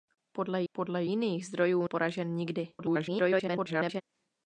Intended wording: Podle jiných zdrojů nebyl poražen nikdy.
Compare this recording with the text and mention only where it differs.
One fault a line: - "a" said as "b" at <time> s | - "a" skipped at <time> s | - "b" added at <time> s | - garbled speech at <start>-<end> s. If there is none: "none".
- "podle" added at 0.7 s
- "nebyl" skipped at 1.9 s
- garbled speech at 2.8-4.0 s